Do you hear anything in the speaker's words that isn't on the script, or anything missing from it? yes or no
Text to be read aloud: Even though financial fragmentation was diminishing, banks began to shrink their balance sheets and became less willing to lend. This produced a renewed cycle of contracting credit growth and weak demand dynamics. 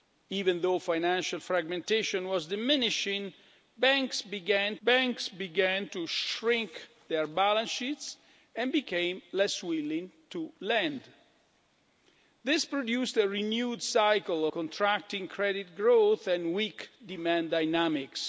yes